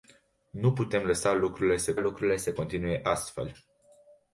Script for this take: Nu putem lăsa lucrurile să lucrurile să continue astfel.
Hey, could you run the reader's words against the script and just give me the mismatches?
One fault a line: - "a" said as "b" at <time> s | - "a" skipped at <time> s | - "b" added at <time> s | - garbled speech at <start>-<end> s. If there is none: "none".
none